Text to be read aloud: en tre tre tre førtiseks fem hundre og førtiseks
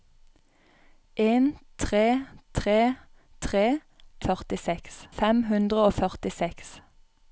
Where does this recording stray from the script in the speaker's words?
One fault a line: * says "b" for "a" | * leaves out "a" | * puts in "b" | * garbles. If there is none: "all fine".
all fine